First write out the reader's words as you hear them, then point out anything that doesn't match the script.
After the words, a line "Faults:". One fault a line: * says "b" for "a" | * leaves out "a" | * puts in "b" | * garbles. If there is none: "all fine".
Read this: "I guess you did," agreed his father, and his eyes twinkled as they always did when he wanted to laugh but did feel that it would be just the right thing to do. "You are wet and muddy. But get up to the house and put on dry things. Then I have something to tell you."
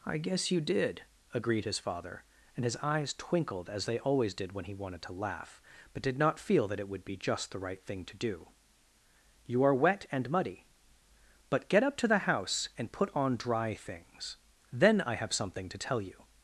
"I guess you did," agreed his father, and his eyes twinkled as they always did when he wanted to laugh but did not feel that it would be just the right thing to do. "You are wet and muddy. But get up to the house and put on dry things. Then I have something to tell you."
Faults:
* puts in "not"